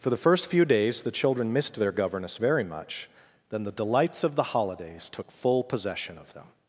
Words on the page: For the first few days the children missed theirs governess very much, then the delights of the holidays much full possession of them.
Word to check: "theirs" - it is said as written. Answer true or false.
false